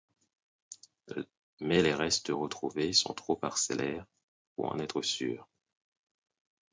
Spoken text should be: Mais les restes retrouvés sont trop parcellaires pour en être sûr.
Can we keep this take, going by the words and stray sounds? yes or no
yes